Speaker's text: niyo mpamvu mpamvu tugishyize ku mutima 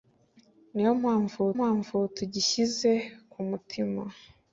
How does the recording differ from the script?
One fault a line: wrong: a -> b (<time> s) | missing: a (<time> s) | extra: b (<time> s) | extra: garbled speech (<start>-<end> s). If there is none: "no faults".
no faults